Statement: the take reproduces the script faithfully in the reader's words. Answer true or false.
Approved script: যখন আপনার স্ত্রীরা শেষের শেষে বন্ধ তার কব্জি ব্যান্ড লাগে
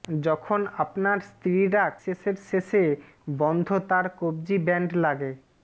true